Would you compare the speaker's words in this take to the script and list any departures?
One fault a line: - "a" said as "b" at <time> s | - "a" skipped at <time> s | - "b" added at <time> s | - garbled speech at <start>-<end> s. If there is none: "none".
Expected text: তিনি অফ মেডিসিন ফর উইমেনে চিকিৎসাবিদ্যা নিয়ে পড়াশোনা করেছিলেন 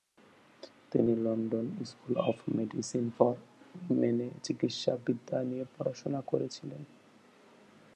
- "লন্ডন স্কুল" added at 1.1 s